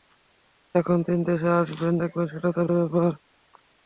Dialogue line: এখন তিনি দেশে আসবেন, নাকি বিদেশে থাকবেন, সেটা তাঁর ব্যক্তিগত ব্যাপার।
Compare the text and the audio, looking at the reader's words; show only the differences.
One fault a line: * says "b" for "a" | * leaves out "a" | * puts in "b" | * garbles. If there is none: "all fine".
* leaves out "নাকি বিদেশে"
* leaves out "ব্যক্তিগত"